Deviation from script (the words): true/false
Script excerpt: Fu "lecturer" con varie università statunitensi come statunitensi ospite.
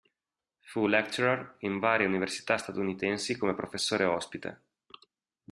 true